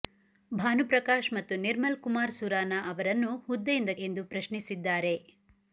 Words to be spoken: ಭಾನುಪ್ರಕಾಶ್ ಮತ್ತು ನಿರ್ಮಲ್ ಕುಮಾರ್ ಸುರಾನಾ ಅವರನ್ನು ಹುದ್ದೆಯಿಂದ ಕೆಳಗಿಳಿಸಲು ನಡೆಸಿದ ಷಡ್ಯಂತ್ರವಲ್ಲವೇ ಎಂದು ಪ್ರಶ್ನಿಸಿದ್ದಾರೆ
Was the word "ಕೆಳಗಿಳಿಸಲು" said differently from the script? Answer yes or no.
yes